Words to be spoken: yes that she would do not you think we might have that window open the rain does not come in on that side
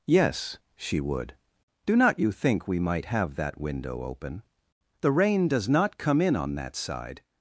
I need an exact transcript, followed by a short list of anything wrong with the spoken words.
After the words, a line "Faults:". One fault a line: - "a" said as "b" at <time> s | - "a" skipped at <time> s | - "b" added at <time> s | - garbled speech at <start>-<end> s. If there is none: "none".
yes she would do not you think we might have that window open the rain does not come in on that side
Faults:
- "that" skipped at 0.6 s